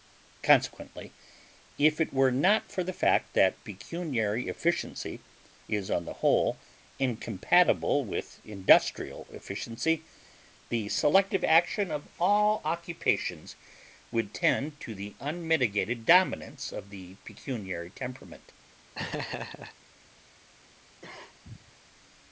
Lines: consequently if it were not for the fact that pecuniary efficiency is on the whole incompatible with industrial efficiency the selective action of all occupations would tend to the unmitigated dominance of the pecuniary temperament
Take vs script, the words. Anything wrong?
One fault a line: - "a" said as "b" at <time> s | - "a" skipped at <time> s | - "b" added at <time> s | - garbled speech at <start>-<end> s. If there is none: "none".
none